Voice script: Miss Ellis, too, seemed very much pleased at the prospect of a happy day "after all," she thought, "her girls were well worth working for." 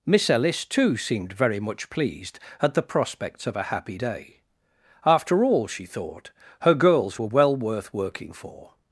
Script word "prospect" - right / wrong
wrong